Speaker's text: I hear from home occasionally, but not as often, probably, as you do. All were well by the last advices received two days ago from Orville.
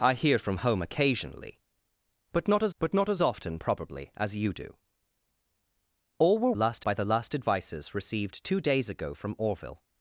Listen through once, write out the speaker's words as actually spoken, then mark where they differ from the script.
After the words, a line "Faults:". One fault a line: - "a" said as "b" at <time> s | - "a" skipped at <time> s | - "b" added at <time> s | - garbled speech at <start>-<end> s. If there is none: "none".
I hear from home occasionally, but not as but not as often, probably, as you do. All were last by the last advices received two days ago from Orville.
Faults:
- "but not as" added at 2.8 s
- "well" said as "last" at 6.5 s